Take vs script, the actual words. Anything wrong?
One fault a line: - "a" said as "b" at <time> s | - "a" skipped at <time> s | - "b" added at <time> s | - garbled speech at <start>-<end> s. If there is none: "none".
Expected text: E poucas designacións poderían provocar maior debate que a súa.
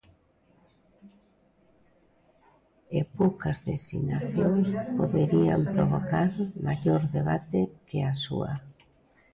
none